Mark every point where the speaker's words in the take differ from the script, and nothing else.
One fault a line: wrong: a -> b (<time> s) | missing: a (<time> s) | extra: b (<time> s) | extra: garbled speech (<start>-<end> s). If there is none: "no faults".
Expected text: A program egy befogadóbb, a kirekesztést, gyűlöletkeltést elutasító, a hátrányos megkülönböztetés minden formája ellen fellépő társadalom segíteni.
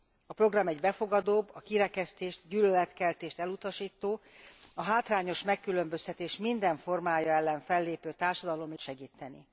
no faults